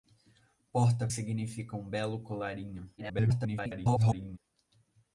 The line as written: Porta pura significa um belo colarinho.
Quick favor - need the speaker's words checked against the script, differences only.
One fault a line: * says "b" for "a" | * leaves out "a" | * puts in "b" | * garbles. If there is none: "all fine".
* leaves out "pura"
* garbles